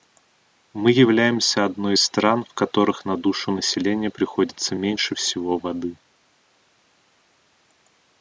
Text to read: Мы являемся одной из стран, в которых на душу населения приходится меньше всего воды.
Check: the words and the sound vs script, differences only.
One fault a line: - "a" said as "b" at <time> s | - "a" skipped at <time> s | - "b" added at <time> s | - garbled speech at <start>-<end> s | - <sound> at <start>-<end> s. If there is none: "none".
none